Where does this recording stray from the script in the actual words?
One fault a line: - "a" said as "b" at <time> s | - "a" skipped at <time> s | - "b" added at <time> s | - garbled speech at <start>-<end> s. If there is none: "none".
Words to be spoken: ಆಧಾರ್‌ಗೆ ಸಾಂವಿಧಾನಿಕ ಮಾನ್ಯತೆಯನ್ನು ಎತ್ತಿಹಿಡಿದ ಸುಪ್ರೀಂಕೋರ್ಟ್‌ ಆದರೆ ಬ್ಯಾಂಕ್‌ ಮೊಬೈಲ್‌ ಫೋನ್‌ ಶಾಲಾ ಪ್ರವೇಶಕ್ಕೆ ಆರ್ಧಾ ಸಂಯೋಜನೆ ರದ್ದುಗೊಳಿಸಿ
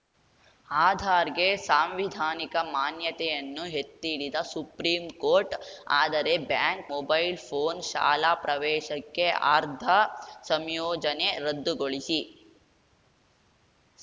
none